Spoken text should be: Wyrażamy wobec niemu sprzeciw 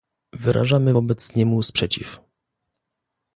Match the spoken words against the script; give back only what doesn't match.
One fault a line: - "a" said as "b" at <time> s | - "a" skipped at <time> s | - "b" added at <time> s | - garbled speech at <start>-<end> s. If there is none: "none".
none